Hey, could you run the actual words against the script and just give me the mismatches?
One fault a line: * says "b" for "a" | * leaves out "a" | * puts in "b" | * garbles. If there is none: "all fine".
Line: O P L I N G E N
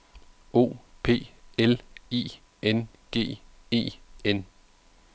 all fine